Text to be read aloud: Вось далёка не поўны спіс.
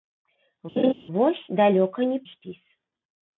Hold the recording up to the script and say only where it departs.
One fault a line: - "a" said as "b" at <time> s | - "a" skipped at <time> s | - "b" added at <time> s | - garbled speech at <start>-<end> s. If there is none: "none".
- "поўны" skipped at 2.2 s